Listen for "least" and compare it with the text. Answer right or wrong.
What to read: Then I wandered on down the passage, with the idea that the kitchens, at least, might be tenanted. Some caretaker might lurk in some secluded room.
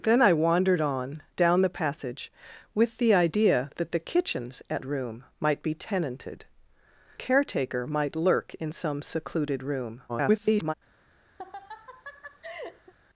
wrong